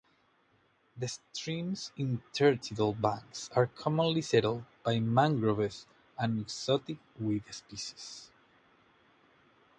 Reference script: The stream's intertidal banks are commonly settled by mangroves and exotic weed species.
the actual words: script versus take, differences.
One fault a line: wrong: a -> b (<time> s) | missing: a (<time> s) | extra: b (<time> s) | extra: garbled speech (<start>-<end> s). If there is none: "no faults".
no faults